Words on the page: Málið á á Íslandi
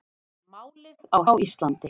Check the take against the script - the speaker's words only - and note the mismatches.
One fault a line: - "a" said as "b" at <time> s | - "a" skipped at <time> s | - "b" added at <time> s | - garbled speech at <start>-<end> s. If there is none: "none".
none